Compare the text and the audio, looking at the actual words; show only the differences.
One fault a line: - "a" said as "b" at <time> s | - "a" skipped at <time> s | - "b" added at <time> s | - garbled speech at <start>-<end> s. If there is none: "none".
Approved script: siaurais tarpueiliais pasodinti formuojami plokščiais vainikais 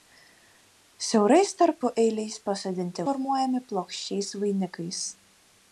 none